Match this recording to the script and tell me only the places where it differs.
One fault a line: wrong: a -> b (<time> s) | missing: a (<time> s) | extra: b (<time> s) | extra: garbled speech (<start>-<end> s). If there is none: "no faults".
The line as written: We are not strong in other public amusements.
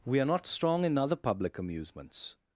no faults